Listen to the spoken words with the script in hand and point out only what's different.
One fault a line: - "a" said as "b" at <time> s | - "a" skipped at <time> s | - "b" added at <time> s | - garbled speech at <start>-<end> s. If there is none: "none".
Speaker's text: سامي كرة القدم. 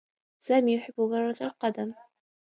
- "يحبّ" added at 0.8 s